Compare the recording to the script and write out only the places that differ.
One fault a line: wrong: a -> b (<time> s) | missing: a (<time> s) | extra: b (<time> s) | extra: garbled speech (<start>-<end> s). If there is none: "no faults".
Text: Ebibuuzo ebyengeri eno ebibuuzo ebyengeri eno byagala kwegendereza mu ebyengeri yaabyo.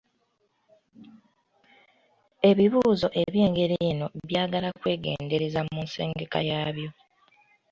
missing: ebibuuzo ebyengeri eno (4.1 s)
wrong: ebyengeri -> nsengeka (5.8 s)